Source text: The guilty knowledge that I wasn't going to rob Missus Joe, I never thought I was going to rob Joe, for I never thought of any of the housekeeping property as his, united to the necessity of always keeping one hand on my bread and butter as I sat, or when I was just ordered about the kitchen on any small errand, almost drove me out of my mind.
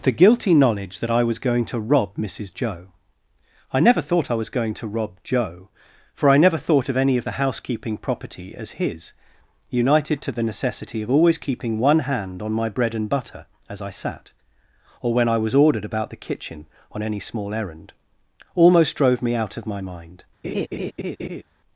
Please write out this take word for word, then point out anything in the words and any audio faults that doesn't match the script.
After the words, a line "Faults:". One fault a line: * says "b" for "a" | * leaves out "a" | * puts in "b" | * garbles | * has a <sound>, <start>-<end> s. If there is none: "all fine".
The guilty knowledge that I was going to rob Missus Joe, I never thought I was going to rob Joe, for I never thought of any of the housekeeping property as his, united to the necessity of always keeping one hand on my bread and butter as I sat, or when I was ordered about the kitchen on any small errand, almost drove me out of my mind.
Faults:
* says "was" for "wasn't"
* leaves out "just"
* has a laugh, 20.4-21.4 s